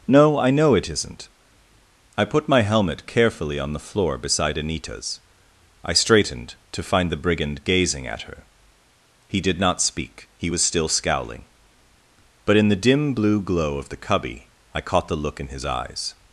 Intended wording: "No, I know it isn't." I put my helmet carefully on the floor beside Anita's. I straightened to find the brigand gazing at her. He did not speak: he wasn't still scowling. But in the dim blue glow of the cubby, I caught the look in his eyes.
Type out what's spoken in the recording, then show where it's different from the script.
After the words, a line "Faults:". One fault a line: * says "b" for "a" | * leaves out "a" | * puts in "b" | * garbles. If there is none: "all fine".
"No, I know it isn't." I put my helmet carefully on the floor beside Anita's. I straightened to find the brigand gazing at her. He did not speak: he was still scowling. But in the dim blue glow of the cubby, I caught the look in his eyes.
Faults:
* says "was" for "wasn't"